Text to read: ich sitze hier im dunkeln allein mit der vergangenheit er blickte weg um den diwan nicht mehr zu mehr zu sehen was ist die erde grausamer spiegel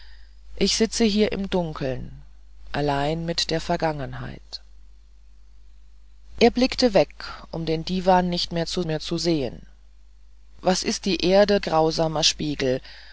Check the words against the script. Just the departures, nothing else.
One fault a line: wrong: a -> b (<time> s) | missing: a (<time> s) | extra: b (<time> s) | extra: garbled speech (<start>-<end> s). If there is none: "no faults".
no faults